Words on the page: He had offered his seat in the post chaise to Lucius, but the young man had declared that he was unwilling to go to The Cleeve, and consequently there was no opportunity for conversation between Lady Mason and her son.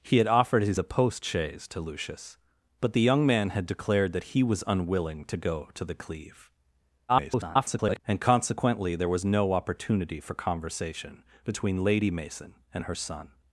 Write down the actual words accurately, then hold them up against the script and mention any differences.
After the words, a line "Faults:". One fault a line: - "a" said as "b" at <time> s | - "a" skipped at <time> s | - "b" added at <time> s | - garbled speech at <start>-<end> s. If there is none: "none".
He had offered his the post chaise to Lucius, but the young man had declared that he was unwilling to go to The Cleeve, [garbled] and consequently there was no opportunity for conversation between Lady Mason and her son.
Faults:
- "seat in" skipped at 0.8 s
- garbled speech at 7.1-8.0 s